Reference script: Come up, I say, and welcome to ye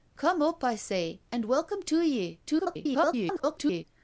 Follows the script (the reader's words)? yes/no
no